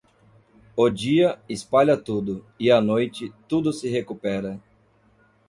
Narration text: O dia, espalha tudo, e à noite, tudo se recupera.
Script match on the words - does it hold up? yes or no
yes